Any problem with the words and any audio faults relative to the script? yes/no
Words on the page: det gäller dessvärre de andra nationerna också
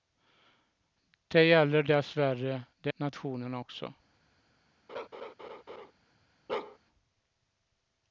yes